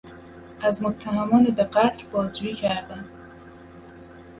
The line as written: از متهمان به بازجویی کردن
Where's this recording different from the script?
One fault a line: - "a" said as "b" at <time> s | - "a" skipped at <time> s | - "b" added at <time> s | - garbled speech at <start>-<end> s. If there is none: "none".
- "قتل" added at 1.6 s